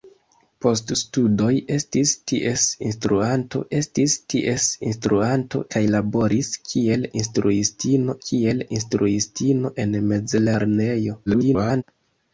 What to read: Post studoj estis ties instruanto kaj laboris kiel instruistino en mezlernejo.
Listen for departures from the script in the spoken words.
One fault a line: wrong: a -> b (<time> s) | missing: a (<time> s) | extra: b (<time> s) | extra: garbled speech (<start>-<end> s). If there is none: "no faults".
extra: estis ties instruanto (3.8 s)
extra: kiel instruistino (8.3 s)
extra: garbled speech (11.3-11.8 s)